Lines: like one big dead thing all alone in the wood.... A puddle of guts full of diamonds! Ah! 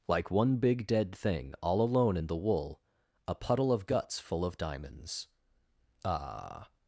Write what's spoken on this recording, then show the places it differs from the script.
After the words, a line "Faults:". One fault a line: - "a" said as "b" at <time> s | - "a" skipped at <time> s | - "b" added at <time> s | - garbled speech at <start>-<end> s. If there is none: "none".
like one big dead thing all alone in the wool.... A puddle of guts full of diamonds! Ah!
Faults:
- "wood" said as "wool" at 2.4 s